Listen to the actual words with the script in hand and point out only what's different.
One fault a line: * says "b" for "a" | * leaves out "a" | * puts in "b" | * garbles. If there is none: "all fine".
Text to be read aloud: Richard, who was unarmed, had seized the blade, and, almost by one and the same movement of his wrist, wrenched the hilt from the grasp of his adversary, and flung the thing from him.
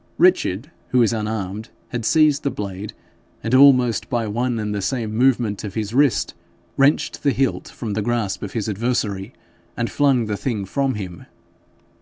all fine